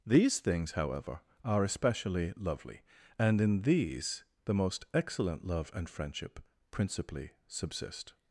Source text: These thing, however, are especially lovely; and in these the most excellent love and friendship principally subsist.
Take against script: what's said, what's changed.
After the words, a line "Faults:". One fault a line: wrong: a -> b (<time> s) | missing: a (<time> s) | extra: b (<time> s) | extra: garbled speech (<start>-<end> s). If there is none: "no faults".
These things, however, are especially lovely; and in these the most excellent love and friendship principally subsist.
Faults:
wrong: thing -> things (0.4 s)